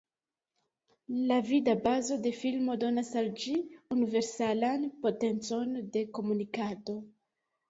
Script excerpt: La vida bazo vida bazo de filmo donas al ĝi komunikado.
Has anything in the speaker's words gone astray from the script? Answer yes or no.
yes